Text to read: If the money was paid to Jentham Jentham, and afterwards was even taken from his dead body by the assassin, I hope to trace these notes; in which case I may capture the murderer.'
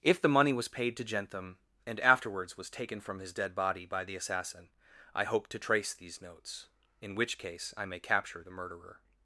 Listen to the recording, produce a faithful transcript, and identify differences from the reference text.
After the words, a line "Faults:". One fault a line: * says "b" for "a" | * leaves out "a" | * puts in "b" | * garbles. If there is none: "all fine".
If the money was paid to Jentham, and afterwards was taken from his dead body by the assassin, I hope to trace these notes; in which case I may capture the murderer.'
Faults:
* leaves out "Jentham"
* leaves out "even"